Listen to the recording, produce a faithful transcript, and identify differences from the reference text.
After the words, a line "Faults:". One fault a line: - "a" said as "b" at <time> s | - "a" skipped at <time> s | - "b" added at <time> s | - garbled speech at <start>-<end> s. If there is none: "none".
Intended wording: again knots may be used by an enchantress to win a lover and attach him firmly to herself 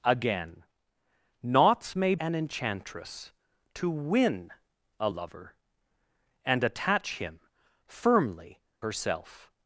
again knots may an enchantress to win a lover and attach him firmly herself
Faults:
- "be used by" skipped at 2.1 s
- "to" skipped at 8.6 s